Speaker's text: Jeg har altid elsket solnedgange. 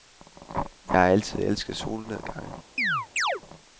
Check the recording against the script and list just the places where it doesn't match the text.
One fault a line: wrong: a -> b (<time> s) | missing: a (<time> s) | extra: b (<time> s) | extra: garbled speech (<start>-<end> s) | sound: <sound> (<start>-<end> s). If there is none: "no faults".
sound: chirp (2.8-3.4 s)